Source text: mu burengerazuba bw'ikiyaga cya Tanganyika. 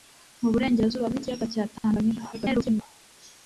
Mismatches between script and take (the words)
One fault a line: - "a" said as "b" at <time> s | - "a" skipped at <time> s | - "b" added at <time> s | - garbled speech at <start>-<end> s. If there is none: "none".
- garbled speech at 2.3-2.8 s